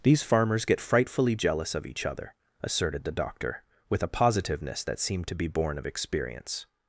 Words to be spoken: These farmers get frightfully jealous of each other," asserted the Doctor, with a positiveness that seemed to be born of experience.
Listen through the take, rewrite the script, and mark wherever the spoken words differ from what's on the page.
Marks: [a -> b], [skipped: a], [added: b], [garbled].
These farmers get frightfully jealous of each other," asserted the Doctor, with a positiveness that seemed to be born of experience.